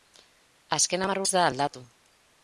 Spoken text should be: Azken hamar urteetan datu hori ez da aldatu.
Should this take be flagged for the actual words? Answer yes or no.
yes